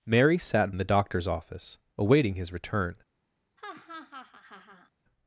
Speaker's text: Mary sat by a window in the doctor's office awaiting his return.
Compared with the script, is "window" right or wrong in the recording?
wrong